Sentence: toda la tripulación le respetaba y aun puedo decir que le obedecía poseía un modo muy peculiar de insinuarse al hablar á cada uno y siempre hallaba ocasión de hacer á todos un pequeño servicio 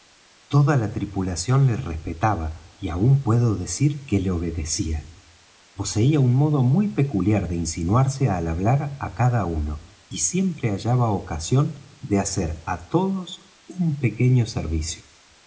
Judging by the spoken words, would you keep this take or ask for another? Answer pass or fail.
pass